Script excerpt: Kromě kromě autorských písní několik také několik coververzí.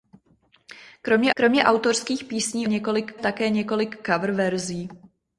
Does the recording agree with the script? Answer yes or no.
yes